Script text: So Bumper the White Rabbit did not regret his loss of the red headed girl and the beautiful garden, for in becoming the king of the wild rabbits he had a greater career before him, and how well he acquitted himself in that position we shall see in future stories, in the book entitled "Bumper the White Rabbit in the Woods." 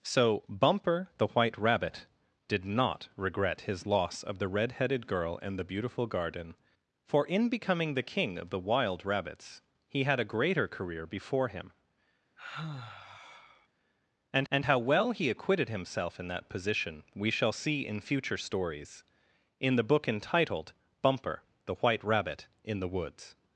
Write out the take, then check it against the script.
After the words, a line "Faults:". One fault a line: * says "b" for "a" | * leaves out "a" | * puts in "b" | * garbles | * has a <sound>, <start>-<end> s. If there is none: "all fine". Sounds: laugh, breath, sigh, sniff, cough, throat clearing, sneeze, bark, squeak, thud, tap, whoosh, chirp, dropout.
So Bumper the White Rabbit did not regret his loss of the red headed girl and the beautiful garden, for in becoming the king of the wild rabbits he had a greater career before him, and and how well he acquitted himself in that position we shall see in future stories, in the book entitled "Bumper the White Rabbit in the Woods."
Faults:
* has a sigh, 12.4-13.7 s
* puts in "and"